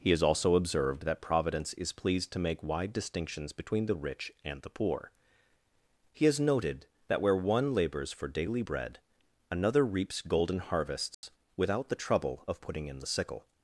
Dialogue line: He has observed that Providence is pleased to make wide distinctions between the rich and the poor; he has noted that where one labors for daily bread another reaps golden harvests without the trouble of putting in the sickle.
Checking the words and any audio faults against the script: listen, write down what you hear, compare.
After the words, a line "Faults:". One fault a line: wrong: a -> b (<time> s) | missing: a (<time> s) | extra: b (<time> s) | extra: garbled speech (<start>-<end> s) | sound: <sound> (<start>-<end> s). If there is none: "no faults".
He has also observed that Providence is pleased to make wide distinctions between the rich and the poor; he has noted that where one labors for daily bread another reaps golden harvests without the trouble of putting in the sickle.
Faults:
extra: also (0.2 s)
sound: dropout (11.1-11.2 s)